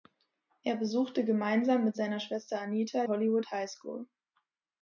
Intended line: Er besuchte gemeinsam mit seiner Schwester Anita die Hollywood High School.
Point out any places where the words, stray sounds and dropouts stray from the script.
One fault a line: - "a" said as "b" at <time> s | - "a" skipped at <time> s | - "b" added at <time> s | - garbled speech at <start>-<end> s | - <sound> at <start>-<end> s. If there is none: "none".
- "die" skipped at 3.0 s